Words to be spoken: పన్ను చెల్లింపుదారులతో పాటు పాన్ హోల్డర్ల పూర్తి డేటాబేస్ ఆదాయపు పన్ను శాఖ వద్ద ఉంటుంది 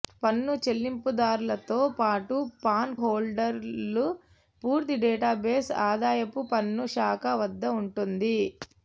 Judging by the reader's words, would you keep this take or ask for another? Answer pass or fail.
pass